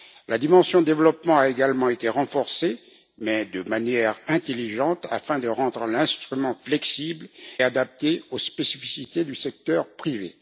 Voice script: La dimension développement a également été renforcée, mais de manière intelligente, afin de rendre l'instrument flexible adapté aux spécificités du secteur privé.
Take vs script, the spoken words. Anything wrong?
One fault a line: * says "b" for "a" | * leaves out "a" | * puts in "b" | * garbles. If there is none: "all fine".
all fine